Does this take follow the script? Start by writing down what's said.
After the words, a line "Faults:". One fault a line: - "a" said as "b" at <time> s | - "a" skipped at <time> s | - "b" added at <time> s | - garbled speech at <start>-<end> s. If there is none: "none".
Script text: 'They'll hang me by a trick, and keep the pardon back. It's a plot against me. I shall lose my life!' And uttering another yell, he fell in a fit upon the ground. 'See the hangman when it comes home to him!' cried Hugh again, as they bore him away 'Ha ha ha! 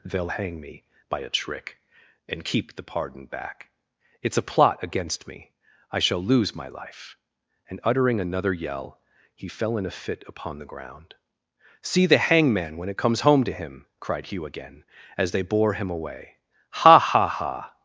'They'll hang me by a trick, and keep the pardon back. It's a plot against me. I shall lose my life!' And uttering another yell, he fell in a fit upon the ground. 'See the hangman when it comes home to him!' cried Hugh again, as they bore him away 'Ha ha ha!
Faults:
none